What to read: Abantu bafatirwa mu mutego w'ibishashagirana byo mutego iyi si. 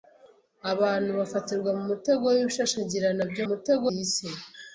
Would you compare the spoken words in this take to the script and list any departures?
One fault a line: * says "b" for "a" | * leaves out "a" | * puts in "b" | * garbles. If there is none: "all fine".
all fine